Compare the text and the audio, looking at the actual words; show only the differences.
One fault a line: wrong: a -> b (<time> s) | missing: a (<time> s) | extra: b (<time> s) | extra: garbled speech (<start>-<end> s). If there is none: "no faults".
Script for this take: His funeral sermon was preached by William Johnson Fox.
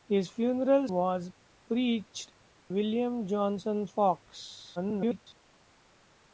missing: sermon (0.9 s)
missing: by (2.3 s)
extra: garbled speech (4.8-5.3 s)